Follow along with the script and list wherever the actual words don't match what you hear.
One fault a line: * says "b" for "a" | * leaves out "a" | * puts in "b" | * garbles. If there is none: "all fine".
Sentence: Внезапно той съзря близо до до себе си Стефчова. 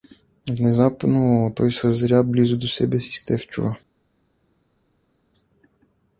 * leaves out "до"